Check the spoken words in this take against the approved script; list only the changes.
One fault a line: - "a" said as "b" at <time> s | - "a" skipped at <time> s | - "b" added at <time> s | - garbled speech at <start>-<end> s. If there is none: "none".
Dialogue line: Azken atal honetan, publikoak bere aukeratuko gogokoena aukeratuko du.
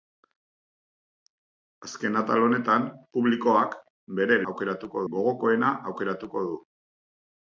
none